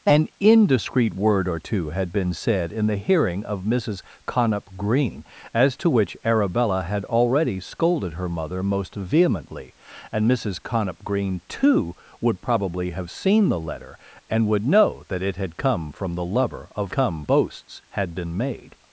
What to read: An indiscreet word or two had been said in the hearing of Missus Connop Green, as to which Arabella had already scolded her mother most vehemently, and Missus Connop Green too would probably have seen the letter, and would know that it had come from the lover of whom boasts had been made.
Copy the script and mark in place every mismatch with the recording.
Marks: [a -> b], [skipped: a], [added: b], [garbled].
An indiscreet word or two had been said in the hearing of Missus Connop Green, as to which Arabella had already scolded her mother most vehemently, and Missus Connop Green too would probably have seen the letter, and would know that it had come from the lover of [whom -> come] boasts had been made.